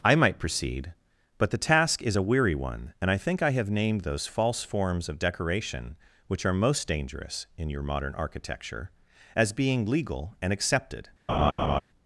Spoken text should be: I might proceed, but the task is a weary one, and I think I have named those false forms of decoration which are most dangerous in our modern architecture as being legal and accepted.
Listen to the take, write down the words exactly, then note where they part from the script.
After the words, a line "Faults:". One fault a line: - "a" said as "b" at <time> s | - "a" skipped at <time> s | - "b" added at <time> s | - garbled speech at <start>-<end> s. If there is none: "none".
I might proceed, but the task is a weary one, and I think I have named those false forms of decoration which are most dangerous in your modern architecture as being legal and accepted.
Faults:
- "our" said as "your" at 7.7 s